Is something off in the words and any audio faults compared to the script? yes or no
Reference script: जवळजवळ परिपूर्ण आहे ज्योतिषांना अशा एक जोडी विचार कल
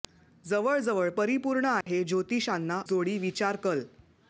yes